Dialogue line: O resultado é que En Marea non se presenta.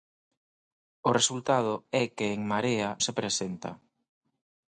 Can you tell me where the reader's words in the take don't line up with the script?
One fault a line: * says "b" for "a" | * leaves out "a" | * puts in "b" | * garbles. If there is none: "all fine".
* leaves out "non"